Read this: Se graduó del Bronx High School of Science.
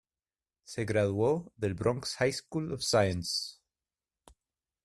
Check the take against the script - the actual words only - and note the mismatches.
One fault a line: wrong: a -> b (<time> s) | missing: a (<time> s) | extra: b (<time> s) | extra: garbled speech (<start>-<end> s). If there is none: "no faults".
no faults